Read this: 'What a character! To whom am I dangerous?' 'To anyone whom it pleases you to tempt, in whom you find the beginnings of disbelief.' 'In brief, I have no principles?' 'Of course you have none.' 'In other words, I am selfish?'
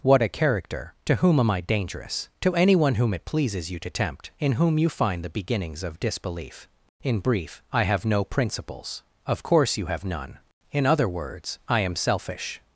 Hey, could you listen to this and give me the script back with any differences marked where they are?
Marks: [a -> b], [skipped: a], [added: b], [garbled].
'What a character! To whom am I dangerous?' 'To anyone whom it pleases you to tempt, in whom you find the beginnings of disbelief.' 'In brief, I have no principles?' 'Of course you have none.' 'In other words, I am selfish?'